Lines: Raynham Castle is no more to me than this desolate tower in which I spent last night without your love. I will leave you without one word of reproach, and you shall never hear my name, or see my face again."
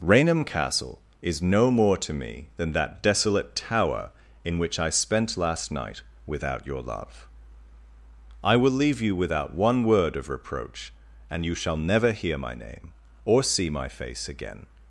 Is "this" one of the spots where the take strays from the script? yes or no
yes